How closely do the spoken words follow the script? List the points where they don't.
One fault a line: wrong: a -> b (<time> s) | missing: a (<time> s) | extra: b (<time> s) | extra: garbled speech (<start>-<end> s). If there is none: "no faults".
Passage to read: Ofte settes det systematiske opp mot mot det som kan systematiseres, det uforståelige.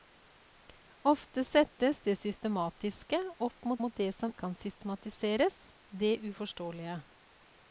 no faults